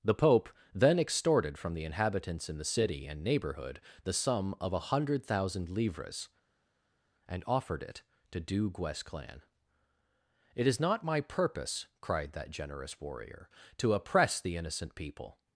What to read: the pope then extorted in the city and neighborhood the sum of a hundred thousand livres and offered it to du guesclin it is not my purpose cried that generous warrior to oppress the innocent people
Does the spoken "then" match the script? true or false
true